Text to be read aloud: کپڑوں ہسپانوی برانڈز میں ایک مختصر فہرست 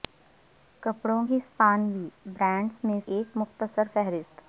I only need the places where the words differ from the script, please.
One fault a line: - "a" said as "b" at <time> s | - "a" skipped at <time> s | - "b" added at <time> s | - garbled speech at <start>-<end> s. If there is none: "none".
none